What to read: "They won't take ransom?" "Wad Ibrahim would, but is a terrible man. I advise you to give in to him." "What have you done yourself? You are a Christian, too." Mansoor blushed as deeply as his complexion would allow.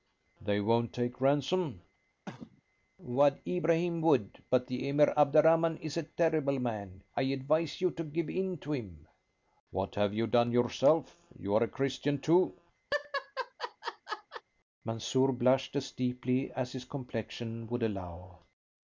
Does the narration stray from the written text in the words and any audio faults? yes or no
yes